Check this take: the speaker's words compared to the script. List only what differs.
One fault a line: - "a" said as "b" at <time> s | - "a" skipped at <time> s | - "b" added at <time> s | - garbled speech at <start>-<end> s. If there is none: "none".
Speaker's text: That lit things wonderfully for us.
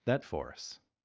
- "lit things wonderfully" skipped at 0.2 s